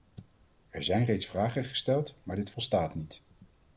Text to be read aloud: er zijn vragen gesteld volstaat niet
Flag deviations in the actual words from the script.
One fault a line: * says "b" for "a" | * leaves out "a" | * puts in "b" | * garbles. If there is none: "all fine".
* puts in "reeds"
* puts in "maar dit"